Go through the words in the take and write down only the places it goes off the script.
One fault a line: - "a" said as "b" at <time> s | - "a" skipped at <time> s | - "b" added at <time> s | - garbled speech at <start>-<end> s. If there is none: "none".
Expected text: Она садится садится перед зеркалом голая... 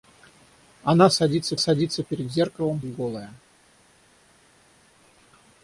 none